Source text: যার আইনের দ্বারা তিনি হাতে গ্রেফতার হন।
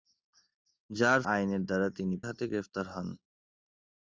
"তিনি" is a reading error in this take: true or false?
false